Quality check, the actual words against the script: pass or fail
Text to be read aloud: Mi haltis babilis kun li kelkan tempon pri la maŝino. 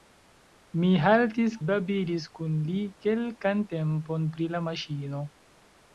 pass